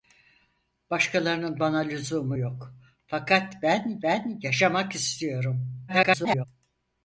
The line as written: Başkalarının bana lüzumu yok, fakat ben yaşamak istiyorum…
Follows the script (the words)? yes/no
no